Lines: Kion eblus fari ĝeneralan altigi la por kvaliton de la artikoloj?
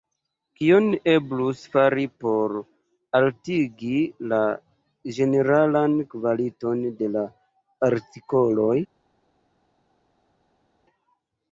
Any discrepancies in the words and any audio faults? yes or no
yes